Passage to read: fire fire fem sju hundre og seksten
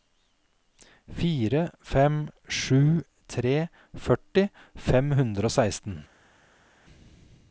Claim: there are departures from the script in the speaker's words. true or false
true